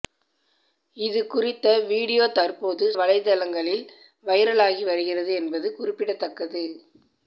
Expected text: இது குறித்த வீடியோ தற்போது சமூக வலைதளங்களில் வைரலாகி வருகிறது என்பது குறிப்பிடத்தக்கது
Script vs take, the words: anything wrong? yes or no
yes